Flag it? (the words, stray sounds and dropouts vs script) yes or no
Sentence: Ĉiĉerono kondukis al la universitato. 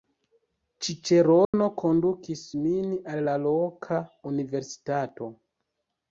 yes